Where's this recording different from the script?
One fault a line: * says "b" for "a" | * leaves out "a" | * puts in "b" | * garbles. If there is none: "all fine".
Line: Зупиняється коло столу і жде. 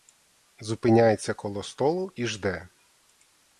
all fine